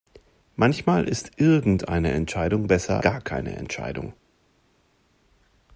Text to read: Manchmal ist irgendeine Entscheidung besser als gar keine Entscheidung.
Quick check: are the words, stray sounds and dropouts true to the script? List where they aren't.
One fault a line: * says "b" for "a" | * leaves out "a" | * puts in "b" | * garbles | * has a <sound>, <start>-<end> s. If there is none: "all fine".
* leaves out "als"